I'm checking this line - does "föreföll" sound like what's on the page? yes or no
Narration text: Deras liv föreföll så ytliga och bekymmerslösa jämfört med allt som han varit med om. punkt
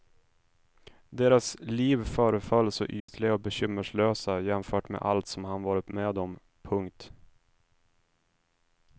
yes